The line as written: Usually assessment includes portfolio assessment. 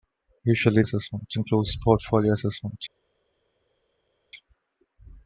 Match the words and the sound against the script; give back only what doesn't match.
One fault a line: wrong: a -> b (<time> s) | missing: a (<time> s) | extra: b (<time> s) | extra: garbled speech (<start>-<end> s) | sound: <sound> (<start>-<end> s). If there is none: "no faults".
no faults